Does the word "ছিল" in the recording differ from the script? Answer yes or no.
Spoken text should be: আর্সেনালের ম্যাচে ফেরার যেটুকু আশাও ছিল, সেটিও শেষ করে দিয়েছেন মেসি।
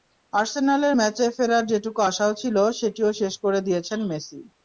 no